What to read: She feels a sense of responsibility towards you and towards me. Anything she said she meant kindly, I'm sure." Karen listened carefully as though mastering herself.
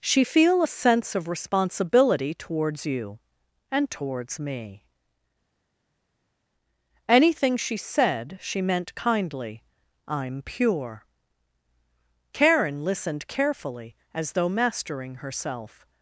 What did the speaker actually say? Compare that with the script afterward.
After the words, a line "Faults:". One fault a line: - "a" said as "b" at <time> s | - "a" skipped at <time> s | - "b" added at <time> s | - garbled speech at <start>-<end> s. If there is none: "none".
She feel a sense of responsibility towards you and towards me. Anything she said she meant kindly, I'm pure." Karen listened carefully as though mastering herself.
Faults:
- "feels" said as "feel" at 0.2 s
- "sure" said as "pure" at 10.4 s